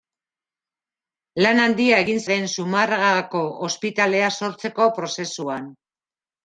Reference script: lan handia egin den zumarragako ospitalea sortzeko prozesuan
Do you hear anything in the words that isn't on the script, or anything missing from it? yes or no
no